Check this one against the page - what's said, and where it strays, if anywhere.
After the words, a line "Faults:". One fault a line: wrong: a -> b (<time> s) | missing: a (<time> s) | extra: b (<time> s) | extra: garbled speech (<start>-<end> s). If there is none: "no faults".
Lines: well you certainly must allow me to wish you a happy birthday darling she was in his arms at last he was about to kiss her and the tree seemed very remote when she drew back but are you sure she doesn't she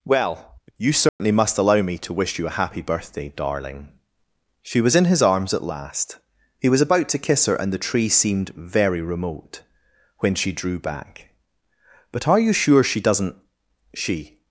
well you certainly must allow me to wish you a happy birthday darling she was in his arms at last he was about to kiss her and the tree seemed very remote when she drew back but are you sure she doesn't she
Faults:
no faults